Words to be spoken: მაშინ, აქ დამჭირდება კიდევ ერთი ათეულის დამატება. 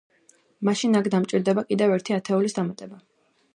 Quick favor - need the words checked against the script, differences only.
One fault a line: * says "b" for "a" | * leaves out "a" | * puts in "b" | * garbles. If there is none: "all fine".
all fine